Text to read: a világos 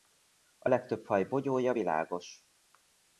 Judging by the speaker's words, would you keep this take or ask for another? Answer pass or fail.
fail